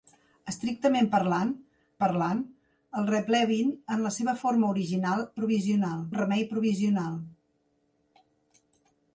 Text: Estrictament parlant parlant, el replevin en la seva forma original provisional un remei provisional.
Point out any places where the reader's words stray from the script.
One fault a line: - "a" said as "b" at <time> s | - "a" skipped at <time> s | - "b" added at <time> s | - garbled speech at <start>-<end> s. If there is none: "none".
none